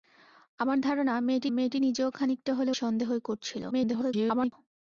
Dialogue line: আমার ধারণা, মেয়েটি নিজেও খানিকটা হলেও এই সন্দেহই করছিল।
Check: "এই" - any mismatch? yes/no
yes